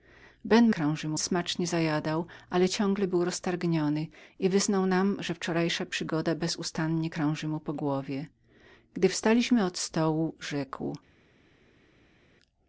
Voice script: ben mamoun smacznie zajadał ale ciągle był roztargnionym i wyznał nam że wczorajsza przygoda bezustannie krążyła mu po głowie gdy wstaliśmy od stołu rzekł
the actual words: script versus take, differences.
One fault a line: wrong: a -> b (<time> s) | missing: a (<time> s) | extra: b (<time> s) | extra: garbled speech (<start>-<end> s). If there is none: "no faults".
wrong: mamoun -> krążyła (0.7 s)